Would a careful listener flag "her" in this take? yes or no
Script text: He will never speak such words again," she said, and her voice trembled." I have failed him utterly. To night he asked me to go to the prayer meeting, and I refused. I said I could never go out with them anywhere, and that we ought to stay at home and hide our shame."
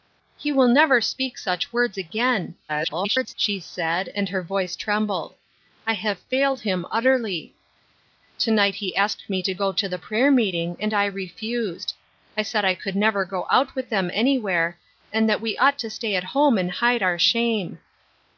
no